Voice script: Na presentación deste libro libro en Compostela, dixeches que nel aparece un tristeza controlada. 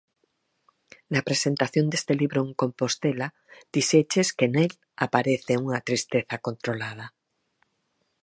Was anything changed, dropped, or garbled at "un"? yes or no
yes